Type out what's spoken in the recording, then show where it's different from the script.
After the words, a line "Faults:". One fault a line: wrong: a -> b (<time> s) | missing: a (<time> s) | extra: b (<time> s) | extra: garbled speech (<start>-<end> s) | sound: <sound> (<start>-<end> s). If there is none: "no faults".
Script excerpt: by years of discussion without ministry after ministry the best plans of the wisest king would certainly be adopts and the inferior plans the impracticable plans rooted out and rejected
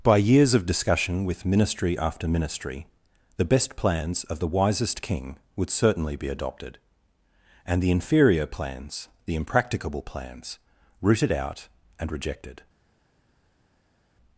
by years of discussion with ministry after ministry the best plans of the wisest king would certainly be adopted and the inferior plans the impracticable plans rooted out and rejected
Faults:
wrong: without -> with (1.2 s)
wrong: adopts -> adopted (6.3 s)